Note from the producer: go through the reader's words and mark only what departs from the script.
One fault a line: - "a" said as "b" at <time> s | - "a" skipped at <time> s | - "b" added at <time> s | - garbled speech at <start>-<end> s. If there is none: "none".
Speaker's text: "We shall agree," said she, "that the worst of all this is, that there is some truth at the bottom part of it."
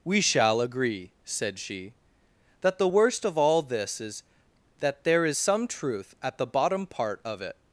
none